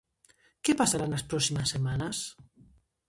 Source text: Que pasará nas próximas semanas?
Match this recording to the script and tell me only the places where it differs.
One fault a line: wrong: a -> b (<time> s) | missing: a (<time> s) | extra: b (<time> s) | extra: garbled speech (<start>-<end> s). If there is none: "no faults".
no faults